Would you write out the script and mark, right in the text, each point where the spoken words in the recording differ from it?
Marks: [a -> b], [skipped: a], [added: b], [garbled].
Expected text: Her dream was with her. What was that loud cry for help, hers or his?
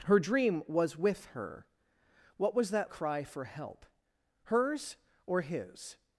Her dream was with her. What was that [skipped: loud] cry for help, hers or his?